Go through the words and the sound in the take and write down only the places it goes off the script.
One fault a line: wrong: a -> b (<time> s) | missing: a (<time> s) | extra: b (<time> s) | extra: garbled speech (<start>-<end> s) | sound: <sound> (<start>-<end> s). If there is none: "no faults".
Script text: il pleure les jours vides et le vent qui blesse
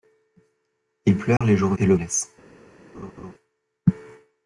sound: dropout (1.4-1.4 s)
missing: vides (1.8 s)
missing: vent qui (2.0 s)
sound: laugh (2.9-3.3 s)